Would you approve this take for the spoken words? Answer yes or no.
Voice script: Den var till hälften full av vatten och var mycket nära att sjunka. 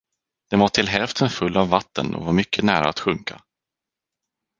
yes